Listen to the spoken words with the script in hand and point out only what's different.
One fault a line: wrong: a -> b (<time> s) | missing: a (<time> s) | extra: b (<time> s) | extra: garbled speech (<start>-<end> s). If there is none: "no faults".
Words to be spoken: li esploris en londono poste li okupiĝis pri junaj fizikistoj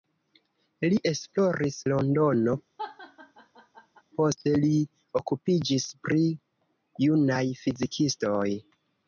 missing: en (1.8 s)